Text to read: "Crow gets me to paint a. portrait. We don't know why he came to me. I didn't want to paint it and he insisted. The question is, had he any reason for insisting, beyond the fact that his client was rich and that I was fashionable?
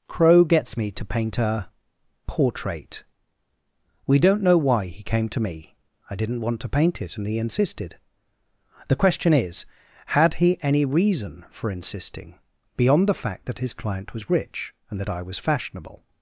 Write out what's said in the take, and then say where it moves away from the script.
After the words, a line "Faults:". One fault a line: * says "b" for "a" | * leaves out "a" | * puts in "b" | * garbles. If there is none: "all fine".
"Crow gets me to paint a. portrait. We don't know why he came to me. I didn't want to paint it and he insisted. The question is, had he any reason for insisting, beyond the fact that his client was rich and that I was fashionable?
Faults:
all fine